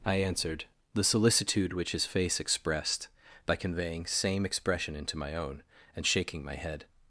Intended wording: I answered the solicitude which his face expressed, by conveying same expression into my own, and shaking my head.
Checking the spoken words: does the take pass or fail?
pass